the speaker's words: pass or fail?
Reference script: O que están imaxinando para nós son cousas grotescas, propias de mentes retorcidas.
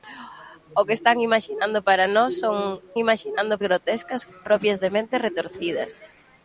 fail